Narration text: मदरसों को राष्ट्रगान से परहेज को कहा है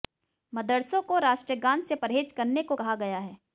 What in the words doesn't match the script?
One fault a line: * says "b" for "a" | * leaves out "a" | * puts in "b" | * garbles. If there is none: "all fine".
* puts in "करने"
* puts in "गया"